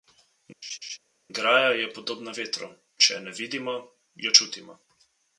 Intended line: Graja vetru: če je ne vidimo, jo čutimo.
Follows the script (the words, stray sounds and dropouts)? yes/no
no